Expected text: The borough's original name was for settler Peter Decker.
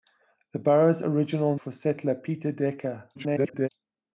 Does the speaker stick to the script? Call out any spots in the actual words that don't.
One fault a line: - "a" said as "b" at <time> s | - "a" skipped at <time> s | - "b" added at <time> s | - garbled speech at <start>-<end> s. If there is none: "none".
- "name was" skipped at 1.6 s
- garbled speech at 3.1-3.7 s